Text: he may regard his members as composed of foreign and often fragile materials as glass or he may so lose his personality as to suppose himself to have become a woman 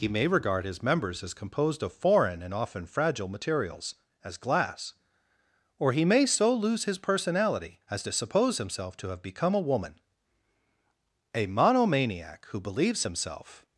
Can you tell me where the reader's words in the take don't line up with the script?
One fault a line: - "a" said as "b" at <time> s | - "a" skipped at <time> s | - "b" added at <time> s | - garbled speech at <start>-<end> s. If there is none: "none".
- "a monomaniac who believes himself" added at 11.3 s